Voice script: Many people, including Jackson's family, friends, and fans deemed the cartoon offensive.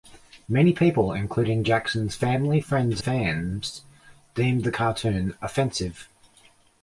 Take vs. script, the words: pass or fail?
fail